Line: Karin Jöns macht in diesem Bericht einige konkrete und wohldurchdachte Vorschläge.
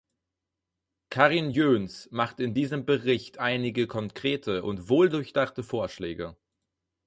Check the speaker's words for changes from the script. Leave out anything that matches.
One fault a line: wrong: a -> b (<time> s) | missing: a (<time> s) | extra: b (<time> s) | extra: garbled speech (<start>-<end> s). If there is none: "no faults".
no faults